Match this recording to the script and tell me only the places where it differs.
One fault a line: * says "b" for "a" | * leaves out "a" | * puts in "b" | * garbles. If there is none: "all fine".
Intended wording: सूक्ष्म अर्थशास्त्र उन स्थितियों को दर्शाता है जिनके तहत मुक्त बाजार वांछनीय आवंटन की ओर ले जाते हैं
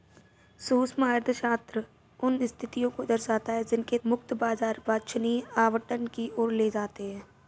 * leaves out "तहत"